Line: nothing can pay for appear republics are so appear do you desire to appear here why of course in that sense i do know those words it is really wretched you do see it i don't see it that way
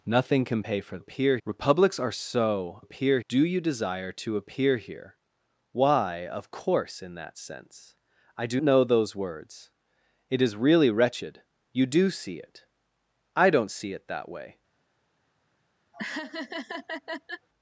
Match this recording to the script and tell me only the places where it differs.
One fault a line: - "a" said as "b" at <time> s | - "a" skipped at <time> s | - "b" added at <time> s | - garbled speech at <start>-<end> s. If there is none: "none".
none